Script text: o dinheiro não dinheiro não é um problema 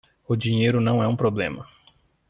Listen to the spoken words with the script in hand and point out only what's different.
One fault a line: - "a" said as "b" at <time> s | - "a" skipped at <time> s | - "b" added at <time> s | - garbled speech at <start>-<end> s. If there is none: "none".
- "dinheiro não" skipped at 1.0 s